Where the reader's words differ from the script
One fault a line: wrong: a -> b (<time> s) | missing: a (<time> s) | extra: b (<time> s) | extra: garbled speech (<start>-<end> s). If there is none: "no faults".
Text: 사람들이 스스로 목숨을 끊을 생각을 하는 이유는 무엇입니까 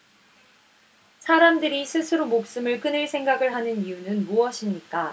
no faults